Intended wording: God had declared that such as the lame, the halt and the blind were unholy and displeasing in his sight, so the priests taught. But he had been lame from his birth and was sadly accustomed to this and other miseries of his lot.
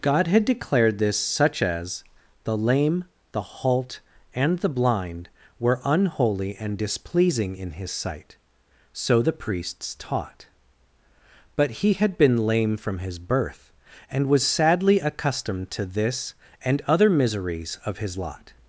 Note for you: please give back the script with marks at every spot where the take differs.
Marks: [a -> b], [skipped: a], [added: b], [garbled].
God had declared [that -> this] such as the lame, the halt and the blind were unholy and displeasing in his sight, so the priests taught. But he had been lame from his birth and was sadly accustomed to this and other miseries of his lot.